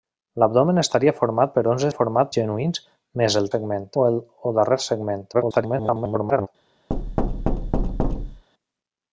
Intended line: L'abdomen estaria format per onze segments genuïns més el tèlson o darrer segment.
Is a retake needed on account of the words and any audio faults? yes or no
yes